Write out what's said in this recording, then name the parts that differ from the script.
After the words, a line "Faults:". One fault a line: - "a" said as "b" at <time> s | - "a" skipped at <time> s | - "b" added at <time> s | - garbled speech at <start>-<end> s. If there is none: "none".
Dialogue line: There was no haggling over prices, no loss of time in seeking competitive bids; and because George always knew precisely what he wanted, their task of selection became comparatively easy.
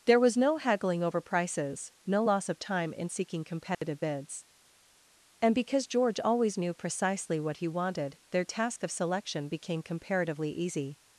There was no haggling over prices, no loss of time in seeking competitive bids; and because George always knew precisely what he wanted, their task of selection became comparatively easy.
Faults:
none